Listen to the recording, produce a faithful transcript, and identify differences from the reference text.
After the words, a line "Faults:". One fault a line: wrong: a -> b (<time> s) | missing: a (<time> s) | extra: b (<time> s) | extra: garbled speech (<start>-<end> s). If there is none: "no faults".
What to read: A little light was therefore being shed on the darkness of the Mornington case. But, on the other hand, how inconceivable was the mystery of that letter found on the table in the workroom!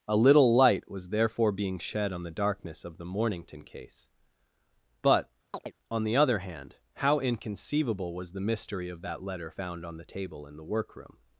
A little light was therefore being shed on the darkness of the Mornington case. But, on the other hand, how inconceivable was the mystery of that letter found on the table in the workroom!
Faults:
no faults